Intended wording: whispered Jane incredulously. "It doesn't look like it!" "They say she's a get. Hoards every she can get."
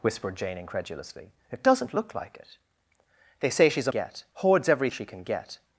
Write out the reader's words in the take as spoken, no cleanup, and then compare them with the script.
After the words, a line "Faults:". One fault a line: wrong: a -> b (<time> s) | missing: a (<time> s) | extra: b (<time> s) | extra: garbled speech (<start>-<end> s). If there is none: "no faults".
whispered Jane incredulously. "It doesn't look like it!" "They say she's a get. Hoards every she can get."
Faults:
no faults